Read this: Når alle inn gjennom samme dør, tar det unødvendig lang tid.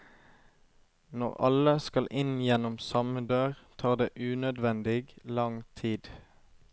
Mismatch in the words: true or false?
true